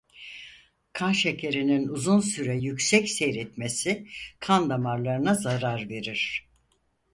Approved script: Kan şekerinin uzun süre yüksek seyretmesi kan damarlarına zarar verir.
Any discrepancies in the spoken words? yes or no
no